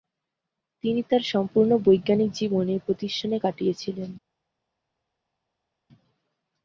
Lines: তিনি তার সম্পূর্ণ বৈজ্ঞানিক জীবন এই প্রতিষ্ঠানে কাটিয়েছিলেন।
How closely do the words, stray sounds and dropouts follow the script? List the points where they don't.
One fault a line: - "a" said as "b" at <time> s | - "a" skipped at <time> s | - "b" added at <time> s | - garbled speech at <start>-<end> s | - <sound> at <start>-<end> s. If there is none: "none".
none